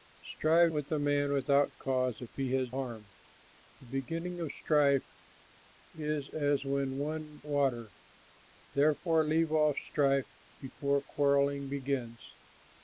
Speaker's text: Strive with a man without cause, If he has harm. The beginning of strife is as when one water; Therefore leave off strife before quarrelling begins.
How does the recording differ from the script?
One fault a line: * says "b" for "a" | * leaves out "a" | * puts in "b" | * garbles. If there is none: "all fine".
all fine